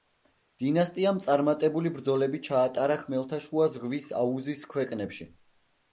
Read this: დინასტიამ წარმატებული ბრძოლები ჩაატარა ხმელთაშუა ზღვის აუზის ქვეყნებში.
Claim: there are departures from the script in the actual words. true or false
false